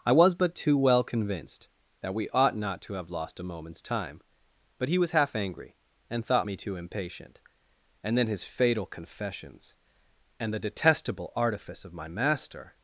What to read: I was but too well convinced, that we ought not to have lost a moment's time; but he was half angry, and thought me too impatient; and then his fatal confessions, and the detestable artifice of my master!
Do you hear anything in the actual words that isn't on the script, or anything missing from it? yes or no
no